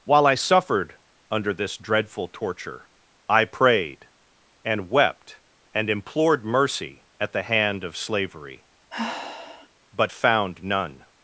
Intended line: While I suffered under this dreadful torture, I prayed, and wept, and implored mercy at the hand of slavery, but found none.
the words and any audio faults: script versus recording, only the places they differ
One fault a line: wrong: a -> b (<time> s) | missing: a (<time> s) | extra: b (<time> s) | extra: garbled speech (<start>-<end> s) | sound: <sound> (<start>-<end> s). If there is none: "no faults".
sound: sigh (8.9-9.7 s)